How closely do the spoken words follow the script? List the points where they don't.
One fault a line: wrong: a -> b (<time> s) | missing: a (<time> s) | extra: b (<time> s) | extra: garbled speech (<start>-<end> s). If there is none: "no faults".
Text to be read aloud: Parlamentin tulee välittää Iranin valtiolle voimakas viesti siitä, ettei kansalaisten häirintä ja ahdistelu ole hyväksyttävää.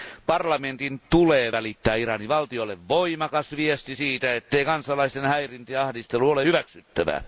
no faults